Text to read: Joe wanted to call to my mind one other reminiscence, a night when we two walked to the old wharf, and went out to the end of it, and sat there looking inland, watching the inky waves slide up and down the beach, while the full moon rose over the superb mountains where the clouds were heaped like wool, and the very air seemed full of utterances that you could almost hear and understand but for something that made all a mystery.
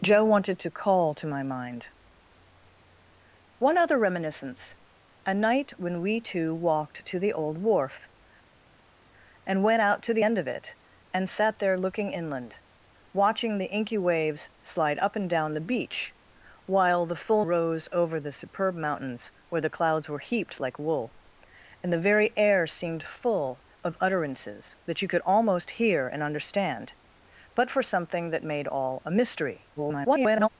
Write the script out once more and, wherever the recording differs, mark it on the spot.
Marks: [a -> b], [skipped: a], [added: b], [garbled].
Joe wanted to call to my mind one other reminiscence, a night when we two walked to the old wharf, and went out to the end of it, and sat there looking inland, watching the inky waves slide up and down the beach, while the full [skipped: moon] rose over the superb mountains where the clouds were heaped like wool, and the very air seemed full of utterances that you could almost hear and understand but for something that made all a mystery. [garbled]